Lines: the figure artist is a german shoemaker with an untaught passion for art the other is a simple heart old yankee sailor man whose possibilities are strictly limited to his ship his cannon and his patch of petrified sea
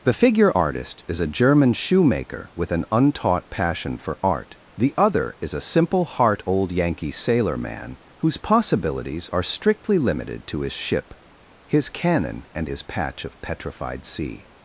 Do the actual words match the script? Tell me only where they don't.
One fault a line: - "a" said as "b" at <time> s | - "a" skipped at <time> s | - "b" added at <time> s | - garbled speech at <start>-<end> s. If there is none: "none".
none